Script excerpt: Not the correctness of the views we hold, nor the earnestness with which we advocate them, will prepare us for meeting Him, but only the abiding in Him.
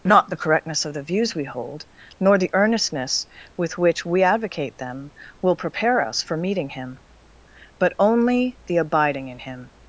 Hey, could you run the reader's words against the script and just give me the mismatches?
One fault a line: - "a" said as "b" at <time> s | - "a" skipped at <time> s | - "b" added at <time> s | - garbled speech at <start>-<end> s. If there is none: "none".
none